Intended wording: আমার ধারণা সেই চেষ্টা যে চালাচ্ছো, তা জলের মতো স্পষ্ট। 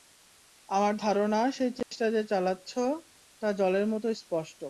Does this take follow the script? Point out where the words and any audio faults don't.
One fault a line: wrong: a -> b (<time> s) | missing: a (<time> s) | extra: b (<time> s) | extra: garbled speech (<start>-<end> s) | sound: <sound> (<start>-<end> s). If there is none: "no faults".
sound: dropout (1.8-1.9 s)